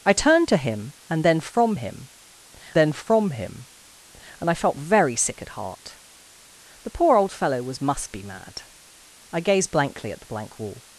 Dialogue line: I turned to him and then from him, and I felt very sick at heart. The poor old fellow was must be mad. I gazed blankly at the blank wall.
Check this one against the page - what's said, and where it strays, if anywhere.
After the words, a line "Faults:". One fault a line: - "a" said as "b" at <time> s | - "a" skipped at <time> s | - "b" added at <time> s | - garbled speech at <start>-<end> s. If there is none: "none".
I turned to him and then from him then from him, and I felt very sick at heart. The poor old fellow was must be mad. I gazed blankly at the blank wall.
Faults:
- "then from him" added at 2.7 s